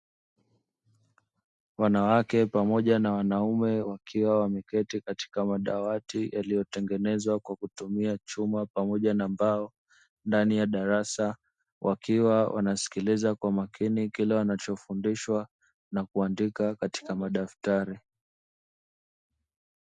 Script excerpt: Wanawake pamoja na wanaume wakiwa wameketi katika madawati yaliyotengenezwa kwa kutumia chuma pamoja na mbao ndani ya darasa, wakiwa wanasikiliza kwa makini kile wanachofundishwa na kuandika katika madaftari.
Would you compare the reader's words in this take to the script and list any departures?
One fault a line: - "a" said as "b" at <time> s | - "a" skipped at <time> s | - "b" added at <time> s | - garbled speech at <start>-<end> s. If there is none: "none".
none